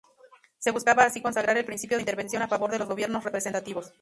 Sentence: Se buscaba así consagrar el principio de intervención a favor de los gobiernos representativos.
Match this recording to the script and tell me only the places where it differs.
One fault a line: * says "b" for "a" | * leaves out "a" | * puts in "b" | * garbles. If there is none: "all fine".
all fine